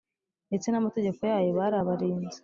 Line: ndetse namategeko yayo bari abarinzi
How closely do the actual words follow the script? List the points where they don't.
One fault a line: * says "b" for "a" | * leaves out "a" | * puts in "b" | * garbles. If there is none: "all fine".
all fine